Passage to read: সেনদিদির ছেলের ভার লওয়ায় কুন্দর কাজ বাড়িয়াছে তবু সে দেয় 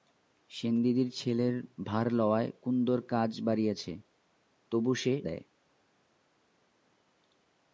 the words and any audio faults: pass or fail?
pass